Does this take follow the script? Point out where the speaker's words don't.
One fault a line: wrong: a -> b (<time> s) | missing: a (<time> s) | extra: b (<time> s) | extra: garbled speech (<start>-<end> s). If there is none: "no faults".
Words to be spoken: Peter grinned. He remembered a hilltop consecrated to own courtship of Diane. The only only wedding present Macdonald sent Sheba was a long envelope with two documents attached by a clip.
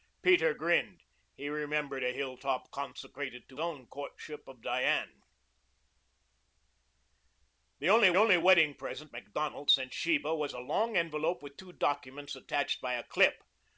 no faults